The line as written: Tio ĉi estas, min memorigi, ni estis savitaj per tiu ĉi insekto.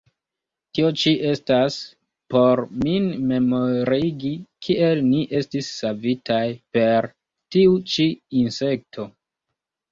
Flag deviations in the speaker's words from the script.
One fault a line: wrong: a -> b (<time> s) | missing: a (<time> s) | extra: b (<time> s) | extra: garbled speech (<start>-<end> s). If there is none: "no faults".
extra: por (2.4 s)
extra: kiel (4.7 s)